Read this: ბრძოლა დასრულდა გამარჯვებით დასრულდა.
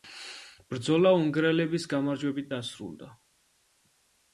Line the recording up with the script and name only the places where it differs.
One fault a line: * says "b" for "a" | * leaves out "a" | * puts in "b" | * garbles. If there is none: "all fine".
* says "უნგრელების" for "დასრულდა"